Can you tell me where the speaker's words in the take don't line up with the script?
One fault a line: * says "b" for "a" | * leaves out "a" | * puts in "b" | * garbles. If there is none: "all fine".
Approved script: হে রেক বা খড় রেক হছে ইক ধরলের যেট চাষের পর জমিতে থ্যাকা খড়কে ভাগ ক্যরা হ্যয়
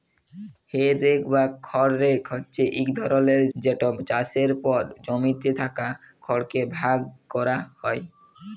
all fine